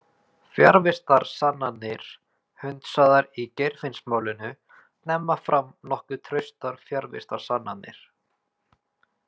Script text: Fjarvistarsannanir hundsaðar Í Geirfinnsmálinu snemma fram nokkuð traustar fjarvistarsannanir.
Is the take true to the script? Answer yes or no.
yes